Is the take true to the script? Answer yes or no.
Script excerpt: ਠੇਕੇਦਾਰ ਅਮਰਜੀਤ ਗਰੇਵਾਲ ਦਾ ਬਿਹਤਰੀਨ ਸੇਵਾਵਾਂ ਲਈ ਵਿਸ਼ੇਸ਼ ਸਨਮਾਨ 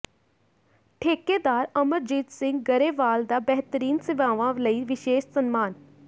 no